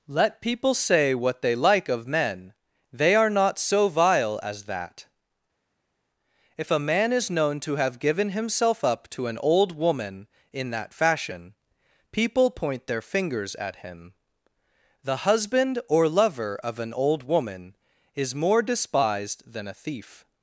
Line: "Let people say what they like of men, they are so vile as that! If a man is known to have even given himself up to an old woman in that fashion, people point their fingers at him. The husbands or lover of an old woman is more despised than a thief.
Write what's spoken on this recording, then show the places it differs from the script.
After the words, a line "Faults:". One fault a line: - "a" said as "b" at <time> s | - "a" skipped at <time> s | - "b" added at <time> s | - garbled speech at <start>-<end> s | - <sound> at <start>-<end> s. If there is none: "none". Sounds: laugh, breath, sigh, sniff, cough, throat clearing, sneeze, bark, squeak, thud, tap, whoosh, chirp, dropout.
"Let people say what they like of men, they are not so vile as that! If a man is known to have given himself up to an old woman in that fashion, people point their fingers at him. The husband or lover of an old woman is more despised than a thief.
Faults:
- "not" added at 3.3 s
- "even" skipped at 8.0 s
- "husbands" said as "husband" at 15.2 s